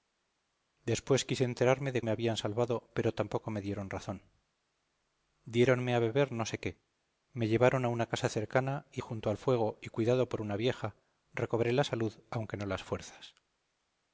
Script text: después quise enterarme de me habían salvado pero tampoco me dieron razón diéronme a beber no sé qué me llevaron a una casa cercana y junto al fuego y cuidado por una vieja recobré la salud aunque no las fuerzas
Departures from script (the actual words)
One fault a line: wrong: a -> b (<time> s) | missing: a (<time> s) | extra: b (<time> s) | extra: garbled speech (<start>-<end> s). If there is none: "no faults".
no faults